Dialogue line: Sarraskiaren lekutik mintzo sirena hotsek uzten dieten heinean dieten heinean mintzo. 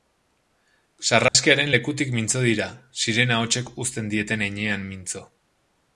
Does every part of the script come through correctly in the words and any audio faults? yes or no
no